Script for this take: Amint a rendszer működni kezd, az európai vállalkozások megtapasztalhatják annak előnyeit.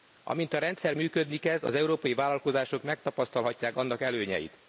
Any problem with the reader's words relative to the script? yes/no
no